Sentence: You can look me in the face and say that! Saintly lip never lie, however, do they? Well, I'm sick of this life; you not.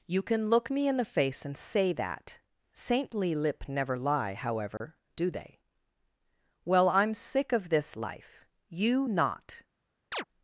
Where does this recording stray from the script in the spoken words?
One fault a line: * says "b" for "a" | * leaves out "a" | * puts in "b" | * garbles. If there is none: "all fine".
all fine